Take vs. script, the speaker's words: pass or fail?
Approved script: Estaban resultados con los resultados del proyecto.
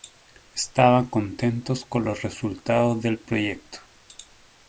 fail